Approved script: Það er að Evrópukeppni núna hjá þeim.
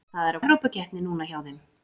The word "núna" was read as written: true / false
true